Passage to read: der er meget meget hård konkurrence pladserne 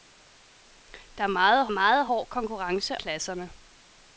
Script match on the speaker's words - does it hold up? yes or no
yes